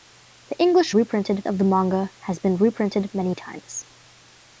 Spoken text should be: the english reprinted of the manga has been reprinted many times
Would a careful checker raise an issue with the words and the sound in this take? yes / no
no